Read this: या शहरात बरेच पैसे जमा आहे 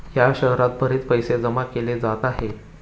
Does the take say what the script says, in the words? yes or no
no